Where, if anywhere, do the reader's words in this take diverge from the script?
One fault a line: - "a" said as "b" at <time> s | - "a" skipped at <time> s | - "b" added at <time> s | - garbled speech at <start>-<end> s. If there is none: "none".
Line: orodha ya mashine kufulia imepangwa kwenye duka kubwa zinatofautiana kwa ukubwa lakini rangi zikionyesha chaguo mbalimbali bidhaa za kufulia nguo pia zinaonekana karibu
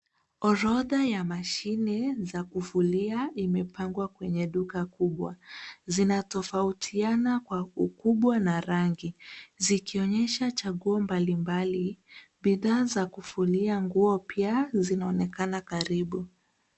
- "za" added at 2.2 s
- "lakini" said as "na" at 8.4 s